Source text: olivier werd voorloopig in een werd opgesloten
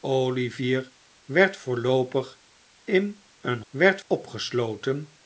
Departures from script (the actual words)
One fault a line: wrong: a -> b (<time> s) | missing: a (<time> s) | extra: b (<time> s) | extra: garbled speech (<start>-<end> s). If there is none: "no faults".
no faults